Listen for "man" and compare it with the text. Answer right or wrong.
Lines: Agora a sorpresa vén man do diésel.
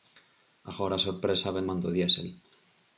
right